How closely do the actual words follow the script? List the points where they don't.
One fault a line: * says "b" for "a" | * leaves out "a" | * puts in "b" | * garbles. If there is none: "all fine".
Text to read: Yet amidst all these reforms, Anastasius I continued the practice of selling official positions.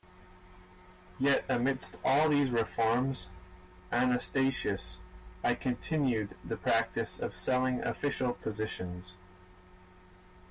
all fine